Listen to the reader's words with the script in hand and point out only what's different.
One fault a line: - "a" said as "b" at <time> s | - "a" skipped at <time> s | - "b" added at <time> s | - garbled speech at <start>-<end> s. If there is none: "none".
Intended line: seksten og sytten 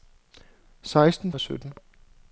none